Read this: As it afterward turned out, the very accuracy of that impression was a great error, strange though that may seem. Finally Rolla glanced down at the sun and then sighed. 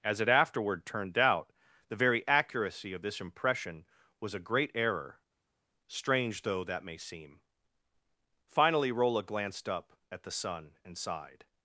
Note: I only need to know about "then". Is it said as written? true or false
false